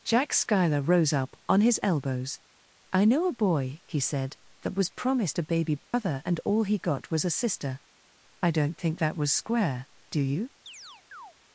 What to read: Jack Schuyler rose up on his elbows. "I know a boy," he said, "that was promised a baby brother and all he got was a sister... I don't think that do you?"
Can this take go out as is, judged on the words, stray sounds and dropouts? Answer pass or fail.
fail